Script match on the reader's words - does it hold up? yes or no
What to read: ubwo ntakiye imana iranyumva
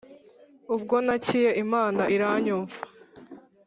yes